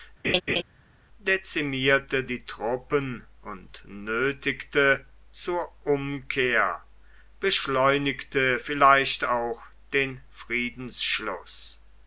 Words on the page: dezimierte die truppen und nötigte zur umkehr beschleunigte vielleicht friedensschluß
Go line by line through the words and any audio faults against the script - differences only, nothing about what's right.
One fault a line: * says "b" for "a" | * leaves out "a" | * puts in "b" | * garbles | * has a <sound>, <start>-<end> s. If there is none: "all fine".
* has a laugh, 0.2-0.6 s
* puts in "auch den"